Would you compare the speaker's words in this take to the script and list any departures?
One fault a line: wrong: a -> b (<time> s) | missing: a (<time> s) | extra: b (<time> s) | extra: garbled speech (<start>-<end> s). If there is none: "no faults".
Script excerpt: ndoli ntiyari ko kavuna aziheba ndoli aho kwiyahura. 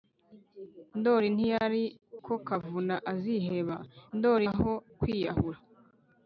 no faults